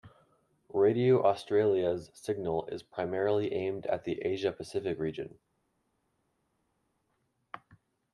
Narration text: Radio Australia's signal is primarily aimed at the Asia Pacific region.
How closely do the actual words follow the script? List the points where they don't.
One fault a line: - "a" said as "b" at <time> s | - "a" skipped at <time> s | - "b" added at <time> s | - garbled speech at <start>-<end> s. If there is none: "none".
none